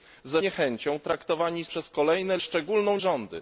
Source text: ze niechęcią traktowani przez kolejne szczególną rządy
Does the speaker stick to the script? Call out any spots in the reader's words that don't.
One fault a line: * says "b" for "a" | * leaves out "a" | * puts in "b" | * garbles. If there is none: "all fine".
all fine